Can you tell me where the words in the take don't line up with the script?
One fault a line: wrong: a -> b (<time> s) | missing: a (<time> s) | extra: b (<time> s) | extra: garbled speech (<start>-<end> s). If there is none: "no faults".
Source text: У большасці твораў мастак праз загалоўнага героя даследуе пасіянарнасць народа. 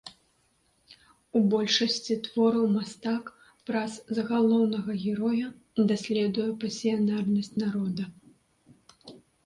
no faults